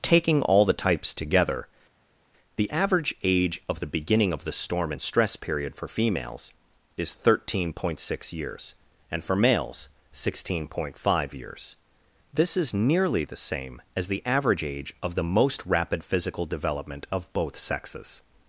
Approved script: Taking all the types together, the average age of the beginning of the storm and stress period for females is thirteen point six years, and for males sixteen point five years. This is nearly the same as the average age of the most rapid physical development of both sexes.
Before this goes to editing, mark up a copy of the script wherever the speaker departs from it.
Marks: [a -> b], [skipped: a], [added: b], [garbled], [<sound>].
Taking all the types together, the average age of the beginning of the storm and stress period for females is thirteen point six years, and for males sixteen point five years. This is nearly the same as the average age of the most rapid physical development of both sexes.